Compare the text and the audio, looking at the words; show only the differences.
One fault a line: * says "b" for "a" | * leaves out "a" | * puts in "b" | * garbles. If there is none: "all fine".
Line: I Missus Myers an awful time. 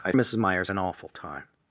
all fine